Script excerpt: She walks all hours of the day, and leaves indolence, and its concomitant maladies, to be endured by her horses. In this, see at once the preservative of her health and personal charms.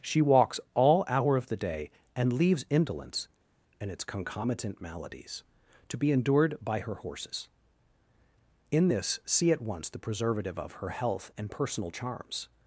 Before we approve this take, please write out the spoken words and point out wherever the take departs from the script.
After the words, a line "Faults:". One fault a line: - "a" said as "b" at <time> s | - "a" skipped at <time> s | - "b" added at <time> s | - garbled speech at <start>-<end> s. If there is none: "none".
She walks all hour of the day, and leaves indolence, and its concomitant maladies, to be endured by her horses. In this, see at once the preservative of her health and personal charms.
Faults:
- "hours" said as "hour" at 1.1 s